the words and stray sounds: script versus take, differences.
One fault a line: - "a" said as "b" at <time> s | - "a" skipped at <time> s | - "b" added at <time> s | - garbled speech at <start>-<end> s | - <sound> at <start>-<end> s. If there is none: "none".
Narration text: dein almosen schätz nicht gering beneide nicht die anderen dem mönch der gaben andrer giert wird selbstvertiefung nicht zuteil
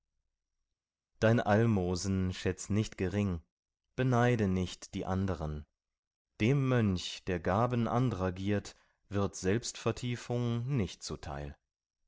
none